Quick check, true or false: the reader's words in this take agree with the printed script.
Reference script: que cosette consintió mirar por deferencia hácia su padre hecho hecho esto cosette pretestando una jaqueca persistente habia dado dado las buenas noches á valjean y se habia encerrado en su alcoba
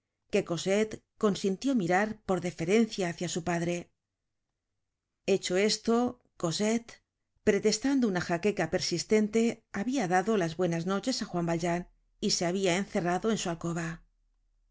false